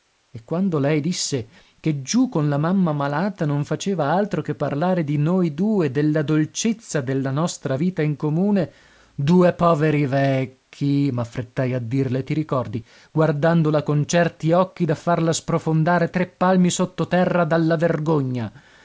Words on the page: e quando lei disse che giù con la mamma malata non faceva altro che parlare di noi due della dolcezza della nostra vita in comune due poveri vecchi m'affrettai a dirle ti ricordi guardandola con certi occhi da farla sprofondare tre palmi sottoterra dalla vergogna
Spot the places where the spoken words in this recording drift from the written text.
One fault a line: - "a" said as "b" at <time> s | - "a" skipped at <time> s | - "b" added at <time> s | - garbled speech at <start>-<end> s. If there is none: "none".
none